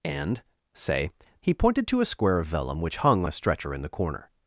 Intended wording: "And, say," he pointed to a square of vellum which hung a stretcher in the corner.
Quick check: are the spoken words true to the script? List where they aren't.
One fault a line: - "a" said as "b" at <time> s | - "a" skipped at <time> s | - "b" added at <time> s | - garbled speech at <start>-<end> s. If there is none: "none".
none